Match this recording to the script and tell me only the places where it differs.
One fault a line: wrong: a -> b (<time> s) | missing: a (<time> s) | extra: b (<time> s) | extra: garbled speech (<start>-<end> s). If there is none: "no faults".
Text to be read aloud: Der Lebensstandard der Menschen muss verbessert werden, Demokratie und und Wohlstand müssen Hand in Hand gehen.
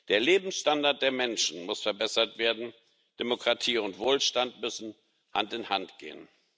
missing: und (4.0 s)